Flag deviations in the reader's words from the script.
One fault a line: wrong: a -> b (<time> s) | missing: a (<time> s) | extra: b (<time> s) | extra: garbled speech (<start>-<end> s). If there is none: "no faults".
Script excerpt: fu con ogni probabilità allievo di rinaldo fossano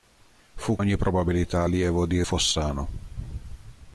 missing: con (0.8 s)
missing: rinaldo (2.2 s)